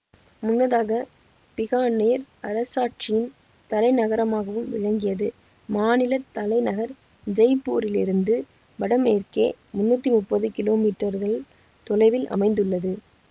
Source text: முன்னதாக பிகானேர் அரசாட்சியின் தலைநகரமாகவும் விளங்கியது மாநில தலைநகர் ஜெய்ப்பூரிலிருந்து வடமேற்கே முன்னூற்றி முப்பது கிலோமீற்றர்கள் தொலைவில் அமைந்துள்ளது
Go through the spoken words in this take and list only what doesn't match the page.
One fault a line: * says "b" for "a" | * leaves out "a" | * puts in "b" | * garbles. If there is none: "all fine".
all fine